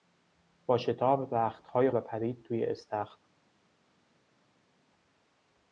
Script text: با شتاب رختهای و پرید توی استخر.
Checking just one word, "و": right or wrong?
right